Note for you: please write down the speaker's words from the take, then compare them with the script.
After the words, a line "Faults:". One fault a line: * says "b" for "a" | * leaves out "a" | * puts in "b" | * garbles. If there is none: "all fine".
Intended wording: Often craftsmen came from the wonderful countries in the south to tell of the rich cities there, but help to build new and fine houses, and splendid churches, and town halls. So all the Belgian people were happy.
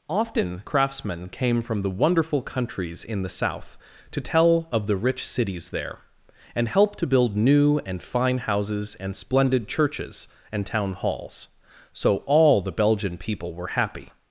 Often craftsmen came from the wonderful countries in the south to tell of the rich cities there, and help to build new and fine houses, and splendid churches, and town halls. So all the Belgian people were happy.
Faults:
* says "and" for "but"